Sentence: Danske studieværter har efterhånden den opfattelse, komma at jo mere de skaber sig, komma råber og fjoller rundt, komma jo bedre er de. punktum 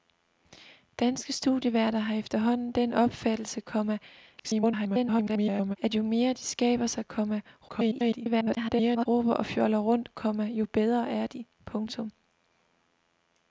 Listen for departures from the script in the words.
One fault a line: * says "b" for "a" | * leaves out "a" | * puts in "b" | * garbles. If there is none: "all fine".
* garbles
* garbles